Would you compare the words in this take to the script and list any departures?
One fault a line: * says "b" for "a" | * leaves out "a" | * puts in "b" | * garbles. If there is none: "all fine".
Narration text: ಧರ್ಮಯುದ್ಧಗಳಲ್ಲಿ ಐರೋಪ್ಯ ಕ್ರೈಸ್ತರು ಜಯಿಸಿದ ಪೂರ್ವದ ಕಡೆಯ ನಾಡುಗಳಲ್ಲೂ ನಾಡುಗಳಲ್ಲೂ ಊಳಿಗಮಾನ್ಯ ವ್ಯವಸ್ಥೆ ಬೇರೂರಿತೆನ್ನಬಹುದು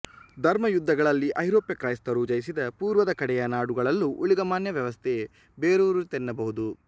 * leaves out "ನಾಡುಗಳಲ್ಲೂ"